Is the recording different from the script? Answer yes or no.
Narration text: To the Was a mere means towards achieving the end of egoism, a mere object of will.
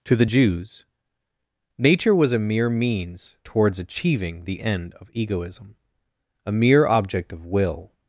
yes